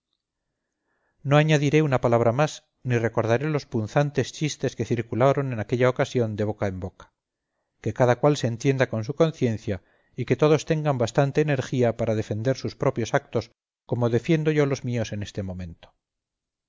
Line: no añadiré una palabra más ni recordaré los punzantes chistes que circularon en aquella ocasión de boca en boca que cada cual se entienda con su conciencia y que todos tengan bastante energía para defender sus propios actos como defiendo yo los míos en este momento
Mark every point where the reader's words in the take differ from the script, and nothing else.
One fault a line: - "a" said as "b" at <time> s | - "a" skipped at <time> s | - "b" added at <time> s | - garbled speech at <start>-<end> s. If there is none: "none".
none